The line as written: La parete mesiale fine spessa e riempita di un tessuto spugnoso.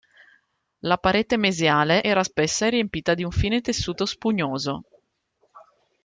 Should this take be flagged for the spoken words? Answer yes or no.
yes